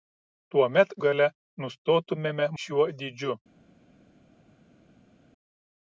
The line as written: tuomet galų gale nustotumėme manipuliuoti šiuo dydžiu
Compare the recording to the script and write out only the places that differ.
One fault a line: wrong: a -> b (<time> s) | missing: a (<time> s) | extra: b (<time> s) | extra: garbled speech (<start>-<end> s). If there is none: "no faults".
missing: galų (0.9 s)
missing: manipuliuoti (2.5 s)